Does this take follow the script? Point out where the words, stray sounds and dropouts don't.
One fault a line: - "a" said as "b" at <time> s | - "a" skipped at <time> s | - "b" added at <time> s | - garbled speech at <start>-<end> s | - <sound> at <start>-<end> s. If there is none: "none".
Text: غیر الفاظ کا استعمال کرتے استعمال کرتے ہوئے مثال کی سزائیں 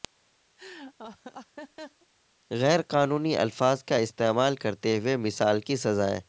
- laugh at 0.6-2.1 s
- "قانونی" added at 2.8 s
- "استعمال کرتے" skipped at 5.0 s